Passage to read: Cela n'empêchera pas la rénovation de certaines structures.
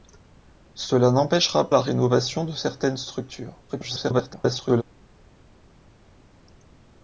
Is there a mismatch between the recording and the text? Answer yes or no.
yes